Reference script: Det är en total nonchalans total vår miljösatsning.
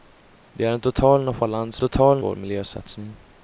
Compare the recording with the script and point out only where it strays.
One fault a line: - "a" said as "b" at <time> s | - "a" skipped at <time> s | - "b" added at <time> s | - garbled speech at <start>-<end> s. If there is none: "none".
none